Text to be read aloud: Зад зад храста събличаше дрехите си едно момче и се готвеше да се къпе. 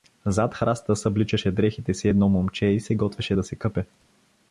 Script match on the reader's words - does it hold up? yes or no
no